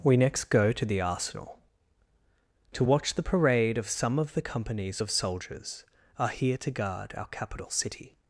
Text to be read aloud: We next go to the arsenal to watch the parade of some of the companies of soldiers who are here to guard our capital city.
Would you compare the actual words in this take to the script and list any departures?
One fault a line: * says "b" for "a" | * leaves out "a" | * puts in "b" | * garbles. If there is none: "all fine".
* leaves out "who"